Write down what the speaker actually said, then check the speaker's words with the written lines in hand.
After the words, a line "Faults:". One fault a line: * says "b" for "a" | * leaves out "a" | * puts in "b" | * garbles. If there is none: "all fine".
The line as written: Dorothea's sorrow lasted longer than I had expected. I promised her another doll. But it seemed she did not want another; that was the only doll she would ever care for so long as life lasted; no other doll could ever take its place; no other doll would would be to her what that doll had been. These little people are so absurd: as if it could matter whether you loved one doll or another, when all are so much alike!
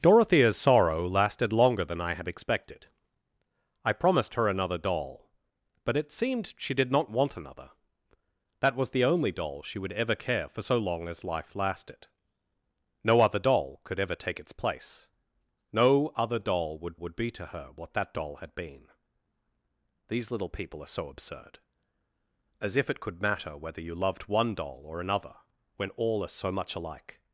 Dorothea's sorrow lasted longer than I had expected. I promised her another doll. But it seemed she did not want another; that was the only doll she would ever care for so long as life lasted; no other doll could ever take its place; no other doll would would be to her what that doll had been. These little people are so absurd: as if it could matter whether you loved one doll or another, when all are so much alike!
Faults:
all fine